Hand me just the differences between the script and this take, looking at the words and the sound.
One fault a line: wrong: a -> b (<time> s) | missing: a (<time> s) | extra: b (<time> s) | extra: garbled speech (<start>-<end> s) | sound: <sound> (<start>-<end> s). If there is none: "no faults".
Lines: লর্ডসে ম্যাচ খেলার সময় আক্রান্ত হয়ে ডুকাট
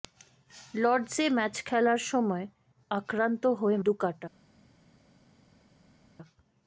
no faults